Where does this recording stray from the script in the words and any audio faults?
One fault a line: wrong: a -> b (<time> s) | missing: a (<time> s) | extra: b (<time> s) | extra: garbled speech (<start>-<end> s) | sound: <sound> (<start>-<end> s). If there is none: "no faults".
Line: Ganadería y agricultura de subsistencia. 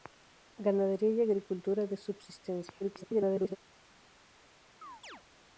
extra: garbled speech (2.8-3.6 s)
sound: chirp (4.8-5.2 s)